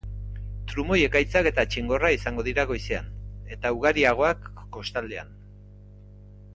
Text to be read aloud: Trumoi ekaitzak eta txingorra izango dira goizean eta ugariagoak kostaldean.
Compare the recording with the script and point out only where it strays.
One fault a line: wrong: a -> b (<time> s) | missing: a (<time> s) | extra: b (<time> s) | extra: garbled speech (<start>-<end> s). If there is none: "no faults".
no faults